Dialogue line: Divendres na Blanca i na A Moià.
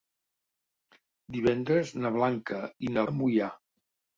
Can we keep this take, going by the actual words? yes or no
yes